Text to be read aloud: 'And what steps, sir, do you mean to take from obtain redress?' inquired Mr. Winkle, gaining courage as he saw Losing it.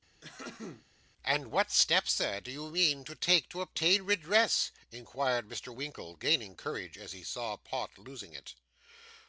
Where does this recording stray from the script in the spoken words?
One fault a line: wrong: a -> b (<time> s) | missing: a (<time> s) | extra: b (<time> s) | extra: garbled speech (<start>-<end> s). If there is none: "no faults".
wrong: from -> to (3.5 s)
extra: Pott (7.6 s)